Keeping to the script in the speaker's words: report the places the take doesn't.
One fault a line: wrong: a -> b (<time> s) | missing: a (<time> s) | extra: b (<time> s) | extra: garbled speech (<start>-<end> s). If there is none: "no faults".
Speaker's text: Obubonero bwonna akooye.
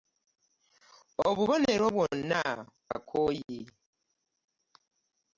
no faults